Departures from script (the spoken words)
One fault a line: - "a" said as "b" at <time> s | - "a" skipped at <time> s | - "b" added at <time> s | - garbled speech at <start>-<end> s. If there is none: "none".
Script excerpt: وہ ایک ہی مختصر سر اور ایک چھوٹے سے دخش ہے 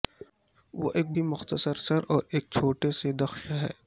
none